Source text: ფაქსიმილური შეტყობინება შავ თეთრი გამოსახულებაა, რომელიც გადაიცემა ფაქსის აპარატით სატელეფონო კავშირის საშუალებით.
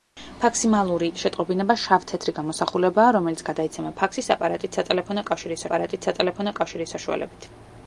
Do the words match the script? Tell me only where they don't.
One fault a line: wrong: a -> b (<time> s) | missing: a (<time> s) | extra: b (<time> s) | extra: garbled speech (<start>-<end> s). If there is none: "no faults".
extra: აპარატით სატელეფონო კავშირის (5.7 s)